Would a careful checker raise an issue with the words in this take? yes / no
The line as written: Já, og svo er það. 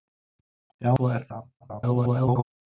yes